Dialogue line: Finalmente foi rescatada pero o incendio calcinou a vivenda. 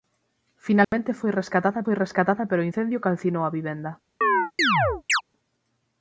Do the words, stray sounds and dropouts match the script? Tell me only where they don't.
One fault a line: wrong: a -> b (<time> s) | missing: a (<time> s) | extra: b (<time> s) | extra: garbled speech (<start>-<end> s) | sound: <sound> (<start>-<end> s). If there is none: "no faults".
sound: dropout (0.8-0.9 s)
extra: foi rescatada (1.8 s)
sound: chirp (4.2-5.2 s)